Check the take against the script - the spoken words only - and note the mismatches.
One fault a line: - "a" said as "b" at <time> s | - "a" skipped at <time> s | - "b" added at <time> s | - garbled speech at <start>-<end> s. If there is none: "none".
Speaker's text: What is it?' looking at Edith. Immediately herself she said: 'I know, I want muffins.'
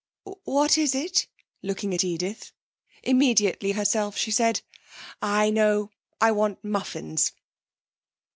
none